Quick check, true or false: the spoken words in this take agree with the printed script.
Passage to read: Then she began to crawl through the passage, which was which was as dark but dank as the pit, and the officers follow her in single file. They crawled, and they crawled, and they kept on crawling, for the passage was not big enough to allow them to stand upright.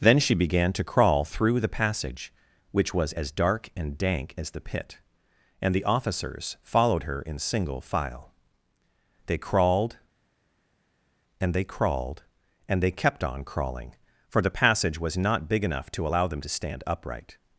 false